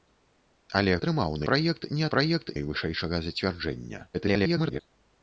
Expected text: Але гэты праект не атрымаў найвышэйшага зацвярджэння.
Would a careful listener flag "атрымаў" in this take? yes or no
yes